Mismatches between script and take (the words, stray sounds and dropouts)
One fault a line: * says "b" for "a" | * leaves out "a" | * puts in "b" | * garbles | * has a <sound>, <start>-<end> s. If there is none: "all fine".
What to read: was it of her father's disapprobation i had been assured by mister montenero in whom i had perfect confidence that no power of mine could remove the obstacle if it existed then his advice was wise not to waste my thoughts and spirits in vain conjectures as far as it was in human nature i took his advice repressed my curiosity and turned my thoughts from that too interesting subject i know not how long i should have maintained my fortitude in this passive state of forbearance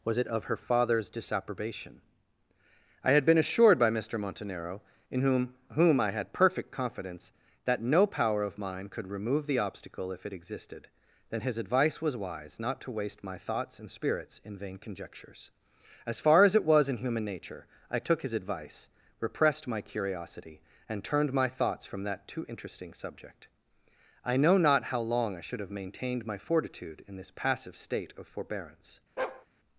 * puts in "whom"
* has a bark, 29.2-29.5 s